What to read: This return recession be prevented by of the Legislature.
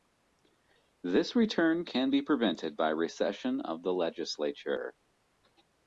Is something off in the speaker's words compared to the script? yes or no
yes